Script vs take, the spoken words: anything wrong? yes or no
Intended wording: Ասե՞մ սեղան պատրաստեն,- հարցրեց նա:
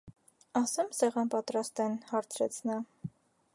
no